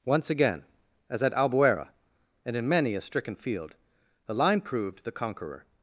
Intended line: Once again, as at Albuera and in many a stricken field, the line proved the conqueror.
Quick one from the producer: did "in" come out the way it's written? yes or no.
yes